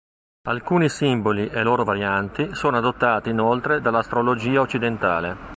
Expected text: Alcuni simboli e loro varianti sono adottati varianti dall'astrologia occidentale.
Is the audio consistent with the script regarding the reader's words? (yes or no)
no